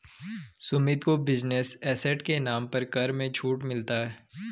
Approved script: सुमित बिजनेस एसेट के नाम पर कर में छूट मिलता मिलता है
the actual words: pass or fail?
fail